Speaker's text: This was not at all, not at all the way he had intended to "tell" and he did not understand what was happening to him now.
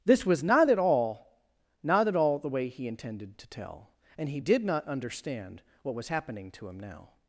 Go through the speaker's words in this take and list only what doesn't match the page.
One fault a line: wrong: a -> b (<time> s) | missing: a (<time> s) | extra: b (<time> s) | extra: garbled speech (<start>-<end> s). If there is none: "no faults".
missing: had (2.9 s)